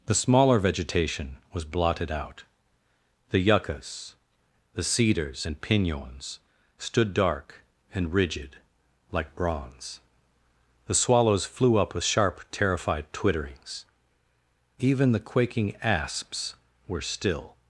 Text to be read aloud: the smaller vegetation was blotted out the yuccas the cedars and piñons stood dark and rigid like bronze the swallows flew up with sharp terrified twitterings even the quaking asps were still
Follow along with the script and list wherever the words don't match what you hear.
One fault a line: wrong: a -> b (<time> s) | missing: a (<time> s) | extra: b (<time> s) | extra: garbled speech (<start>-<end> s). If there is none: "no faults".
no faults